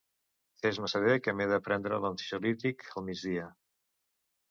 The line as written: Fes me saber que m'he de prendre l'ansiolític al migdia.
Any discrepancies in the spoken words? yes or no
no